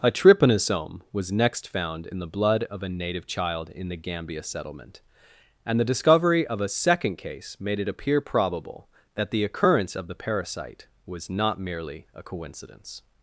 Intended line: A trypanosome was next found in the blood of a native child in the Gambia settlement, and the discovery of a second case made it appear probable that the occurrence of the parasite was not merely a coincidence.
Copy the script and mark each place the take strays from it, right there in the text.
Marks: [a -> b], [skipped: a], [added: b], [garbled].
A trypanosome was next found in the blood of a native child in the Gambia settlement, and the discovery of a second case made it appear probable that the occurrence of the parasite was not merely a coincidence.